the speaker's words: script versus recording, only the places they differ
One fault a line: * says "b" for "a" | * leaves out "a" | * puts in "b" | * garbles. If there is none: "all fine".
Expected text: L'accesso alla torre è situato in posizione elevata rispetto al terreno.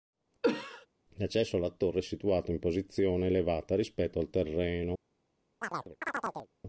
all fine